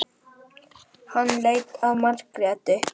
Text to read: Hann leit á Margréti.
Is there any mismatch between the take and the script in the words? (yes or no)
no